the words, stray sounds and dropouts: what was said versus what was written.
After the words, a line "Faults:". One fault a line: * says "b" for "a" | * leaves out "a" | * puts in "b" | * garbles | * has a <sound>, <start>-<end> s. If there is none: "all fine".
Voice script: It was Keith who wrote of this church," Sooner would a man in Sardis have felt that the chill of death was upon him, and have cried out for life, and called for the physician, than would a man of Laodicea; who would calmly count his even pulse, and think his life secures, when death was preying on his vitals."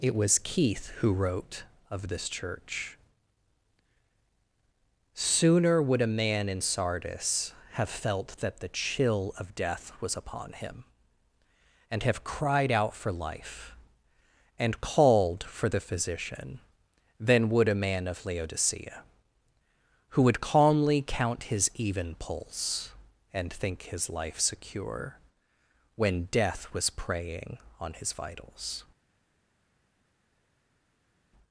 It was Keith who wrote of this church," Sooner would a man in Sardis have felt that the chill of death was upon him, and have cried out for life, and called for the physician, than would a man of Laodicea; who would calmly count his even pulse, and think his life secure, when death was preying on his vitals."
Faults:
* says "secure" for "secures"